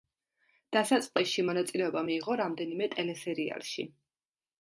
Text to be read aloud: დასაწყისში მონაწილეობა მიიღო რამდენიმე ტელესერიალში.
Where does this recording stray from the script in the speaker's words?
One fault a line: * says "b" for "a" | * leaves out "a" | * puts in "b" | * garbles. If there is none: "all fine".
all fine